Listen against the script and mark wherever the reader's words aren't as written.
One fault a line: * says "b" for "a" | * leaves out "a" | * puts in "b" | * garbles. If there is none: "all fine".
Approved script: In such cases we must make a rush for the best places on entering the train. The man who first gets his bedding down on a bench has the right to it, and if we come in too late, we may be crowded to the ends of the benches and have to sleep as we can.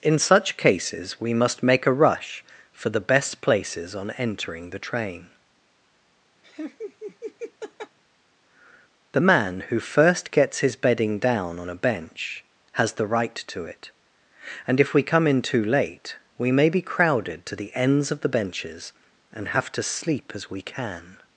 all fine